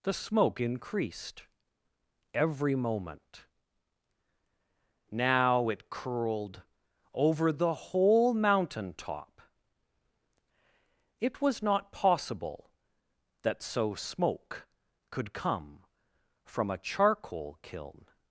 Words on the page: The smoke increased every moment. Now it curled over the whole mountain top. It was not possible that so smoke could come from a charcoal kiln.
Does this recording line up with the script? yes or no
yes